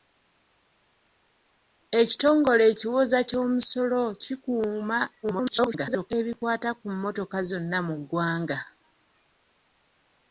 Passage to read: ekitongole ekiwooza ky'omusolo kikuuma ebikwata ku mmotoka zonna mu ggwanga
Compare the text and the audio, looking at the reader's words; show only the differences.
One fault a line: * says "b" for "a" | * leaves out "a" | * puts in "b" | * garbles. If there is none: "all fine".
* garbles